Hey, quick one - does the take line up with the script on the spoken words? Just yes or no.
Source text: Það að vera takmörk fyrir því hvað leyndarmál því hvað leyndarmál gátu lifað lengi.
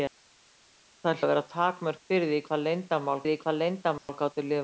yes